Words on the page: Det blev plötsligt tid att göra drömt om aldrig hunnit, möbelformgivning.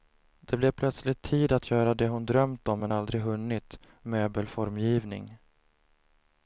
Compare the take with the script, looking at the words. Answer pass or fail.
fail